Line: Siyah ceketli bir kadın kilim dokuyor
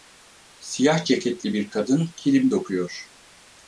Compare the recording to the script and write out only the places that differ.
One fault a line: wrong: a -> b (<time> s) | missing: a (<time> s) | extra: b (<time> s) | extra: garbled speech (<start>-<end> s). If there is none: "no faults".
no faults